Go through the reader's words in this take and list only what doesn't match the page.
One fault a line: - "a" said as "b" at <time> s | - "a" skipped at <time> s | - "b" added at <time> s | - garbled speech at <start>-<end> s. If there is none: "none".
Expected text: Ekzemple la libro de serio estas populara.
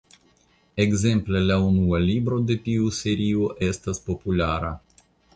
- "unua" added at 1.6 s
- "tiu" added at 2.7 s